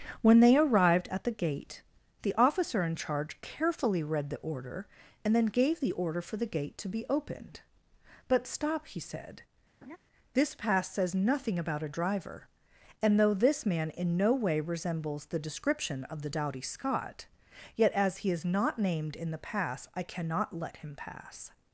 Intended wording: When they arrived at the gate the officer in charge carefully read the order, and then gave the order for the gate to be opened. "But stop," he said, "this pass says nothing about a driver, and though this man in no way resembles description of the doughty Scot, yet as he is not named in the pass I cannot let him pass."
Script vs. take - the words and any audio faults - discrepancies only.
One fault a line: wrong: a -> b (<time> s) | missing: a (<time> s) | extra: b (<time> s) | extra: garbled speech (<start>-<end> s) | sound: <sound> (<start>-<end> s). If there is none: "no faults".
sound: laugh (9.8-10.0 s)
extra: the (15.3 s)